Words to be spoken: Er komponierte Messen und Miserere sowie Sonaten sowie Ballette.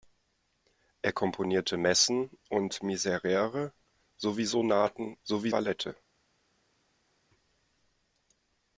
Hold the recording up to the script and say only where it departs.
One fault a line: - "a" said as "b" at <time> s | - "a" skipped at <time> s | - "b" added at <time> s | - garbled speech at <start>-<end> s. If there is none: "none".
none